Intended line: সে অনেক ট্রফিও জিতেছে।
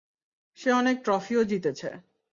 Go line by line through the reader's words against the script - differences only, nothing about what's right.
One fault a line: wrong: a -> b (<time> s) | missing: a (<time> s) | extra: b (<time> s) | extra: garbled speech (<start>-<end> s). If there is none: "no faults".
no faults